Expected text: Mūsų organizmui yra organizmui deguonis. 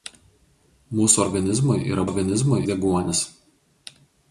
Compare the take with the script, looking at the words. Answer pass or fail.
pass